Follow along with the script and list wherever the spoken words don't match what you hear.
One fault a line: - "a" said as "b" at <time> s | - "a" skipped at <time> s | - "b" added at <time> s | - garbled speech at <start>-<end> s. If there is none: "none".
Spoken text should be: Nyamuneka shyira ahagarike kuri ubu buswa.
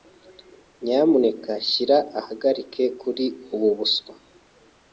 none